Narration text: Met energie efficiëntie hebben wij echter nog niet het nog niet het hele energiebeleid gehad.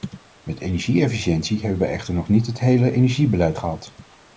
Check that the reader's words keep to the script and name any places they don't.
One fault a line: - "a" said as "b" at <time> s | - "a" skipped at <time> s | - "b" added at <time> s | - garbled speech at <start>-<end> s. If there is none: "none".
- "nog niet het" skipped at 2.6 s